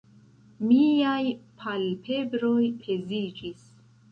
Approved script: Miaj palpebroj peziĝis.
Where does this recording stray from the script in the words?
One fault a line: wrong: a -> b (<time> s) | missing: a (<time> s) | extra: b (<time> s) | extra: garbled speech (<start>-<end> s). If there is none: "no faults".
no faults